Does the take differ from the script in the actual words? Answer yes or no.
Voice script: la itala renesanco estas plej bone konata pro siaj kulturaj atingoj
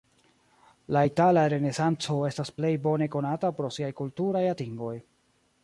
no